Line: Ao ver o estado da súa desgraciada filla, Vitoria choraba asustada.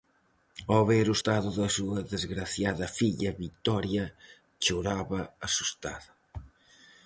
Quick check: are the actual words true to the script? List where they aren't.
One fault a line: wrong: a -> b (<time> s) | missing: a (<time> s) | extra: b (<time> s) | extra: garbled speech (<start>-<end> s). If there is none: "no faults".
no faults